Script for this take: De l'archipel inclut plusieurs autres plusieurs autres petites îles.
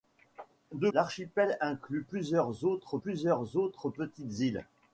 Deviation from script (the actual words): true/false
false